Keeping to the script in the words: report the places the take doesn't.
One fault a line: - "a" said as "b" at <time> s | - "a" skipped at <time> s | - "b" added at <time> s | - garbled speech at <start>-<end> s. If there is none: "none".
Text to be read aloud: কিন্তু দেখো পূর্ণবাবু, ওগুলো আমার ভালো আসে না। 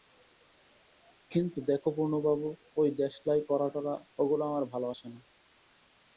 - "ঐ দেশলাই করা-টরা" added at 2.8 s